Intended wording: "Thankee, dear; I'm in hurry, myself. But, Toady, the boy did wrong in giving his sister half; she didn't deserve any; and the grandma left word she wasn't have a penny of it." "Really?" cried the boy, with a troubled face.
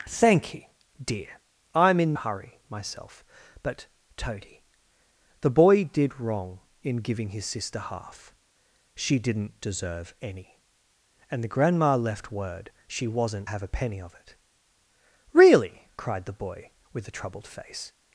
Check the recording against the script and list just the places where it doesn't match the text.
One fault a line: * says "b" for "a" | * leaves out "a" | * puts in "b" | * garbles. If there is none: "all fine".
all fine